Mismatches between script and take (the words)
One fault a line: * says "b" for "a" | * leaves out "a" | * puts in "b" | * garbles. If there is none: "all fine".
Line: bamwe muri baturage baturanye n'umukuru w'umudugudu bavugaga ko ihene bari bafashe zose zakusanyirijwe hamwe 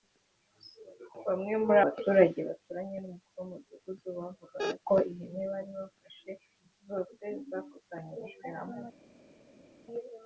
all fine